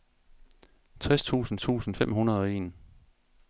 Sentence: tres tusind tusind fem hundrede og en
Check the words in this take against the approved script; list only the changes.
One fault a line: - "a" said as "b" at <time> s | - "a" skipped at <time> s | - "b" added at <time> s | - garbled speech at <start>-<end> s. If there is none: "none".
none